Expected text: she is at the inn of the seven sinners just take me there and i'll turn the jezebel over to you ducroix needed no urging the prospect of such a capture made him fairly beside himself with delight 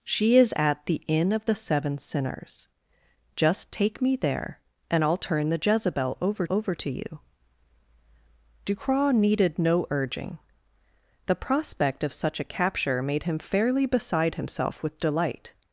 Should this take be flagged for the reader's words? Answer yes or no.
yes